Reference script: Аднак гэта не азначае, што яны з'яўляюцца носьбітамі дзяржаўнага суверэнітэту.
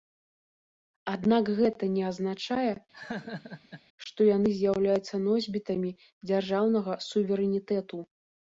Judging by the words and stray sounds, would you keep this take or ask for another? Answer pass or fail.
fail